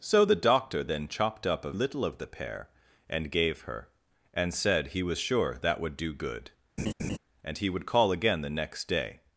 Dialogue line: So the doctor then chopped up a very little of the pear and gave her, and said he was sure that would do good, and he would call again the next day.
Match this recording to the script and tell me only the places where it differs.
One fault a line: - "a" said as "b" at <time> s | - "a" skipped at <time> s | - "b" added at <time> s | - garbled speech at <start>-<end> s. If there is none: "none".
- "very" skipped at 1.7 s